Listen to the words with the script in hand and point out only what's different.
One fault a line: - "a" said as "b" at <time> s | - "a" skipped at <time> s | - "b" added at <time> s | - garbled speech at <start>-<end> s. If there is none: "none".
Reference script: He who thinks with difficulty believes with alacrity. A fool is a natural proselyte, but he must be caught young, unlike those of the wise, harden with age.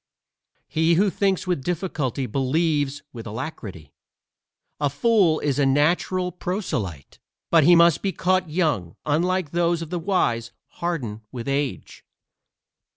none